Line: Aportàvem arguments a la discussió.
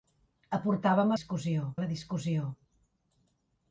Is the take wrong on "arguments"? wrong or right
wrong